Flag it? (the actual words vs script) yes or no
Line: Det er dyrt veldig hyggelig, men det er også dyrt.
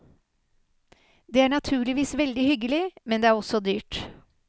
yes